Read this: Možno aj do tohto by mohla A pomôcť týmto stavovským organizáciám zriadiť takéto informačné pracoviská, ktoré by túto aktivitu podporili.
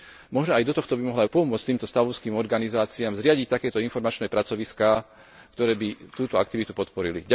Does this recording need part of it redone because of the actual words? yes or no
no